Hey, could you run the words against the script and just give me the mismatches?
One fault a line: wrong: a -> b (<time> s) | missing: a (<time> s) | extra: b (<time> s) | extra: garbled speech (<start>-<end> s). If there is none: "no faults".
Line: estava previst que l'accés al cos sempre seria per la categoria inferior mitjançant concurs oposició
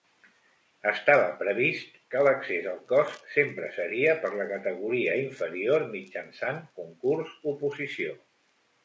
no faults